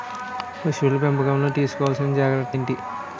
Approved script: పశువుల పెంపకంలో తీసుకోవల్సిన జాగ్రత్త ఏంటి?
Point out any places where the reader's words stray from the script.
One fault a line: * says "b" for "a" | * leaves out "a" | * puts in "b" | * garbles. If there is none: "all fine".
all fine